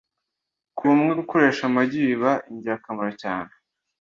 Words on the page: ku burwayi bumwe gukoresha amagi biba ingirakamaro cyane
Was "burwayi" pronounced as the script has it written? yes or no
no